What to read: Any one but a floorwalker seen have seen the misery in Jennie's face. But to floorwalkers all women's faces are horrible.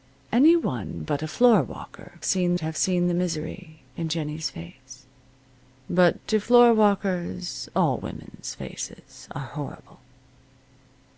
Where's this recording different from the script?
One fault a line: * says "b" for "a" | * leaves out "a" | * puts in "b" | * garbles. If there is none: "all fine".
all fine